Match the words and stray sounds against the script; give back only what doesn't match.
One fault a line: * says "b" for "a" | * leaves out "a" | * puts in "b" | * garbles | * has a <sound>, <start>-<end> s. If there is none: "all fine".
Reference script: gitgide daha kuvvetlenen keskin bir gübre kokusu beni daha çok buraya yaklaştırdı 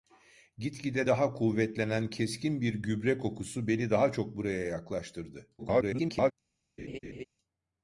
* garbles
* has a laugh, 6.8-7.2 s